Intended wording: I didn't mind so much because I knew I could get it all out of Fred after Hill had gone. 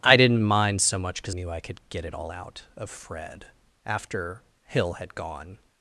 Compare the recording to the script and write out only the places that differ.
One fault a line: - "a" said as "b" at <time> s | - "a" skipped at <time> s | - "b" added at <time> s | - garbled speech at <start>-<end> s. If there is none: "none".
- "I" skipped at 1.4 s